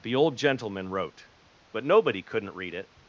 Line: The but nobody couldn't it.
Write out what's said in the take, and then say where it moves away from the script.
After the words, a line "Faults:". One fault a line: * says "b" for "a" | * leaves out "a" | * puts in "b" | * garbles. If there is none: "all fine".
The old gentleman wrote, but nobody couldn't read it.
Faults:
* puts in "old gentleman wrote"
* puts in "read"